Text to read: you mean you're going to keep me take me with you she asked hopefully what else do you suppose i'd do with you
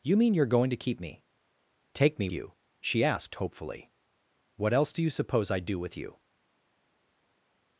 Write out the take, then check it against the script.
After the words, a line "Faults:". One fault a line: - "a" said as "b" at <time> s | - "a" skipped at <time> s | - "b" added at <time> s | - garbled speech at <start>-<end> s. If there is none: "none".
you mean you're going to keep me take me you she asked hopefully what else do you suppose i'd do with you
Faults:
- "with" skipped at 2.3 s